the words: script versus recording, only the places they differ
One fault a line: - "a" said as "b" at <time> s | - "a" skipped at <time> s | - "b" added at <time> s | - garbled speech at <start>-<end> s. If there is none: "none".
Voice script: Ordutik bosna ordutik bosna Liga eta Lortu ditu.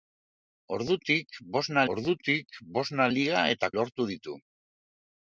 none